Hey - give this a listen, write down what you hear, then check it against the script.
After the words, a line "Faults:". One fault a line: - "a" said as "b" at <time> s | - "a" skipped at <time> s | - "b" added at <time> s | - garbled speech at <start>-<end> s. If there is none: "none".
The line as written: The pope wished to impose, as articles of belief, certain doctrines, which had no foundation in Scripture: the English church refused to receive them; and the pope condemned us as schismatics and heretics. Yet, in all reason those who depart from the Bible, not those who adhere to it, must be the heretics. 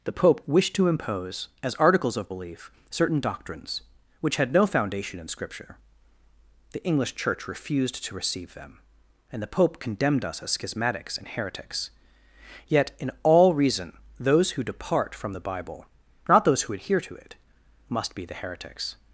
The pope wished to impose, as articles of belief, certain doctrines, which had no foundation in Scripture: the English church refused to receive them; and the pope condemned us as schismatics and heretics. Yet, in all reason those who depart from the Bible, not those who adhere to it, must be the heretics.
Faults:
none